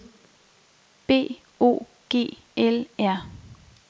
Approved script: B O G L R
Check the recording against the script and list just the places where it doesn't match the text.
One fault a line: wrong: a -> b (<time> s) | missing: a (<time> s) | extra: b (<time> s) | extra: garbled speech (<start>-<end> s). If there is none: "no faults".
no faults